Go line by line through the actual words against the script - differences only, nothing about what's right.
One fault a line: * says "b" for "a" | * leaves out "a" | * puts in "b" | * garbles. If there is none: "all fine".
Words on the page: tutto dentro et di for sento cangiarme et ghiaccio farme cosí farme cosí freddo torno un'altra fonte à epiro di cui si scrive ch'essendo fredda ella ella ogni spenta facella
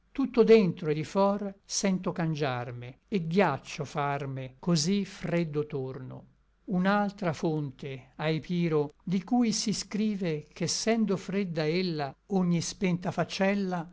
* leaves out "farme cosí"
* leaves out "ella"